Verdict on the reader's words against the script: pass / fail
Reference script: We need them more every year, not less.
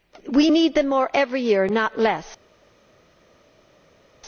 pass